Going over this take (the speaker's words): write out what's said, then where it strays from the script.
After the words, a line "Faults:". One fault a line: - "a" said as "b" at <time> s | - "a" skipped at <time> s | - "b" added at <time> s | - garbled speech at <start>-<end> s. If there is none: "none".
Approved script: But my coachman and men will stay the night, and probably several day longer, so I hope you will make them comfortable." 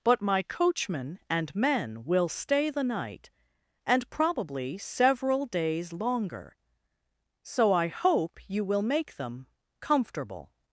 But my coachman and men will stay the night, and probably several days longer, so I hope you will make them comfortable."
Faults:
- "day" said as "days" at 5.4 s